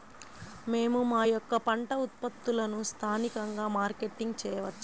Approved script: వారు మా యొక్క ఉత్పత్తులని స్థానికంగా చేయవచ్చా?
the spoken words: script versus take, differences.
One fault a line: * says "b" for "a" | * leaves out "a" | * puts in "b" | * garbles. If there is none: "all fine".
* says "మేము" for "వారు"
* puts in "పంట"
* puts in "మార్కెటింగ్"